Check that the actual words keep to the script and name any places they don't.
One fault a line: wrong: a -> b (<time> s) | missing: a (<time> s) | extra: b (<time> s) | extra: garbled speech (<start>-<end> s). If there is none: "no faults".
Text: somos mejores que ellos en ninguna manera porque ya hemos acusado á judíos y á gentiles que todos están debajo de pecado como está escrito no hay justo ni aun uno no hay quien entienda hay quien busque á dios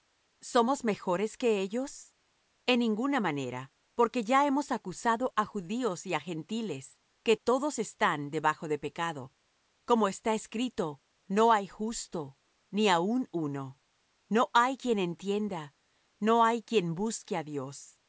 extra: no (16.2 s)